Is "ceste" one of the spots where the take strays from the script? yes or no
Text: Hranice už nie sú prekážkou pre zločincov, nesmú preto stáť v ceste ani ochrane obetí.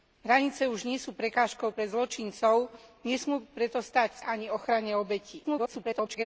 yes